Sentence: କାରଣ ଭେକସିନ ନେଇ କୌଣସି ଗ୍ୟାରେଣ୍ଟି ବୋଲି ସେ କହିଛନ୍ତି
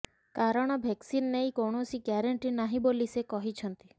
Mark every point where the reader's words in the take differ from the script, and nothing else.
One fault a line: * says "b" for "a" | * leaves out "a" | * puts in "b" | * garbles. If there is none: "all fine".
* puts in "ନାହିଁ"